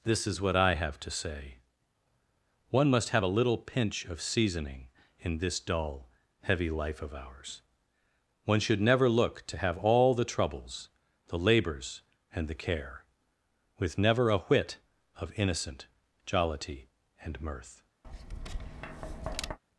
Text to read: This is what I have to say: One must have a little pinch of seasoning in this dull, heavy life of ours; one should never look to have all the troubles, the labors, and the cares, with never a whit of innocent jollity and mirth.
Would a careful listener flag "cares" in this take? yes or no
yes